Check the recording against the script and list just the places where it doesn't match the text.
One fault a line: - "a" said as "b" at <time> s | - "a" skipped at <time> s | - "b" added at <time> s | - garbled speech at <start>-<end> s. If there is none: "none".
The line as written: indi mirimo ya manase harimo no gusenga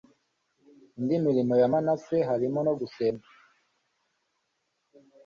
none